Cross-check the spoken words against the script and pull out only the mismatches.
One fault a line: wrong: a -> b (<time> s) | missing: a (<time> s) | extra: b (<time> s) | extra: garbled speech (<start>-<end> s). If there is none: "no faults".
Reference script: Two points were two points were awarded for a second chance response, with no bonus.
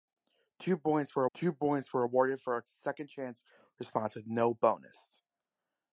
no faults